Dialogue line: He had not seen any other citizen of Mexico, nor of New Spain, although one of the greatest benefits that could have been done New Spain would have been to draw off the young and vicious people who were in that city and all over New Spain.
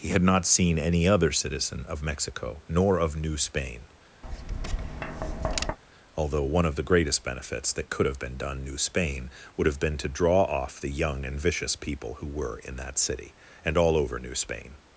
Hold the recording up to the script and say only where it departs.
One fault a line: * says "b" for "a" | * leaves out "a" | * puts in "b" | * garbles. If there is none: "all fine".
all fine